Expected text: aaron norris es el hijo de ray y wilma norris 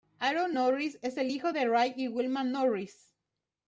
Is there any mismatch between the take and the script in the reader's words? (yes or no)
no